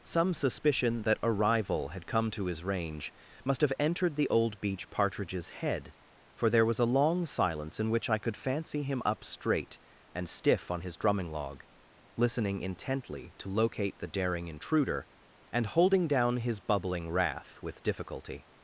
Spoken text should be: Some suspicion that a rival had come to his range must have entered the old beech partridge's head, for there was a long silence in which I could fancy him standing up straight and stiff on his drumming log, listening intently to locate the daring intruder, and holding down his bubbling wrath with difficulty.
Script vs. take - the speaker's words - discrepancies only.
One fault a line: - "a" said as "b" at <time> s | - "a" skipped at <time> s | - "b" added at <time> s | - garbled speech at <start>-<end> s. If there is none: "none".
- "standing" skipped at 9.0 s